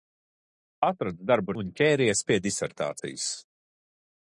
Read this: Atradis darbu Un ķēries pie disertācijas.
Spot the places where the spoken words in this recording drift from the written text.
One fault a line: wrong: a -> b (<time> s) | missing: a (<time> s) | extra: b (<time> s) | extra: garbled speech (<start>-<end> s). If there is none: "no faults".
no faults